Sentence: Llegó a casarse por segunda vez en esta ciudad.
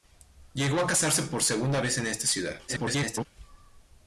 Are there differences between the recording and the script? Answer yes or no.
yes